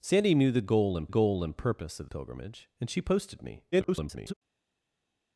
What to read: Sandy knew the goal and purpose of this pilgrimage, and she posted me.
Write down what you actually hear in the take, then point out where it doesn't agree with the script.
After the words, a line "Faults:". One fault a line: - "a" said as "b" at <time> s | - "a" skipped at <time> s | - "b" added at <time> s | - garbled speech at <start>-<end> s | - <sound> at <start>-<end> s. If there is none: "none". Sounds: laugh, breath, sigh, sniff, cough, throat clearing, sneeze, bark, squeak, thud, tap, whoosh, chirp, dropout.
Sandy knew the goal and goal and purpose of pilgrimage, and she posted me. [garbled]
Faults:
- "goal and" added at 1.1 s
- "this" skipped at 2.1 s
- garbled speech at 3.7-4.3 s